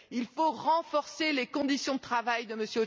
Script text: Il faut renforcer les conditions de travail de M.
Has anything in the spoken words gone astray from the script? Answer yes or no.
no